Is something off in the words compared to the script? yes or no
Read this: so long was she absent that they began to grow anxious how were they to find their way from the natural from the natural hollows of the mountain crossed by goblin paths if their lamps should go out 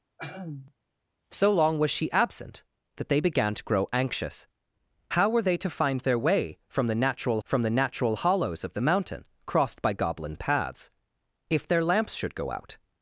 no